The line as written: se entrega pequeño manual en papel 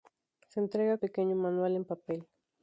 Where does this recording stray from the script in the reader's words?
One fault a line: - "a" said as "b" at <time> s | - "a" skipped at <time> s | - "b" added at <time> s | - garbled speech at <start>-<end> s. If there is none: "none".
none